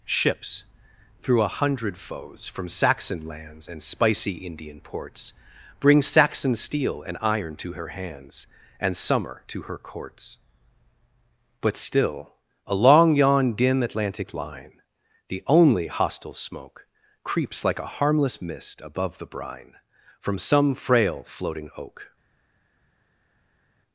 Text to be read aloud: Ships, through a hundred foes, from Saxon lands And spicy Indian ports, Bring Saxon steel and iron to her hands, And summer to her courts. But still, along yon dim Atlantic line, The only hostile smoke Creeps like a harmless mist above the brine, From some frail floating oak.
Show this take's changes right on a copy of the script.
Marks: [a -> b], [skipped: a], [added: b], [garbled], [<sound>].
Ships, through a hundred foes, from Saxon lands And spicy Indian ports, Bring Saxon steel and iron to her hands, And summer to her courts. But still, along yon dim Atlantic line, The only hostile smoke Creeps like a harmless mist above the brine, From some frail floating oak.